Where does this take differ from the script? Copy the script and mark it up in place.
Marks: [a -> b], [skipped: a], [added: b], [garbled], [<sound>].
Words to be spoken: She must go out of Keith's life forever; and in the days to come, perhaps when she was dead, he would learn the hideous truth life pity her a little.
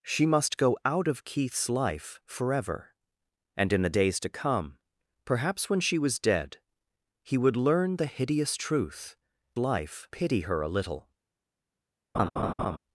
She must go out of Keith's life forever; and in the days to come, perhaps when she was dead, he would learn the hideous truth life pity her a little. [laugh]